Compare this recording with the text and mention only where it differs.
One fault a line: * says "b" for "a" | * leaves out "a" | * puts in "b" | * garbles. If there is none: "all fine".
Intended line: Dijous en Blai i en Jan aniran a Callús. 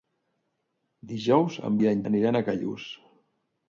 * leaves out "Blai"
* leaves out "Jan"